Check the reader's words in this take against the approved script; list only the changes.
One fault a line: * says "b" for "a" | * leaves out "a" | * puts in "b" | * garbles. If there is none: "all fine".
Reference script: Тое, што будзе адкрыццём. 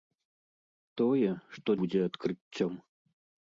all fine